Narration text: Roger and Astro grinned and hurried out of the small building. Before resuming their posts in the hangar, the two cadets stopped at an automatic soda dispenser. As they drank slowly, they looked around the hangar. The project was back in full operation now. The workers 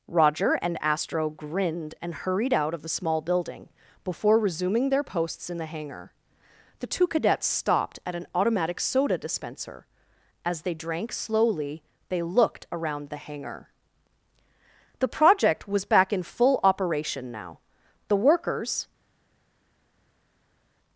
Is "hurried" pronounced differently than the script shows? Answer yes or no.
no